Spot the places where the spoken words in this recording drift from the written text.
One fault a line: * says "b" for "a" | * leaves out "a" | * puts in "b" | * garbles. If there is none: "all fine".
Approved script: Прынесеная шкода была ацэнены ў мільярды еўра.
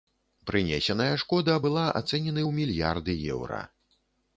all fine